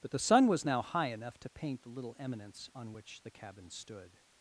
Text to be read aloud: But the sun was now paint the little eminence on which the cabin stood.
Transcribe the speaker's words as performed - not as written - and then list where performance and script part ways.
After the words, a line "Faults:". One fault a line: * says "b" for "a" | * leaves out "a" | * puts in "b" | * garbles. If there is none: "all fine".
But the sun was now high enough to paint the little eminence on which the cabin stood.
Faults:
* puts in "high enough to"